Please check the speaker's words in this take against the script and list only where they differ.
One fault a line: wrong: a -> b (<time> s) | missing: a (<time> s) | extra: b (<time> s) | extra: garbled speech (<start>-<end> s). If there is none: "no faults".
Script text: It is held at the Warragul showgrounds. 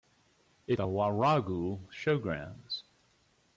missing: is held at (0.8 s)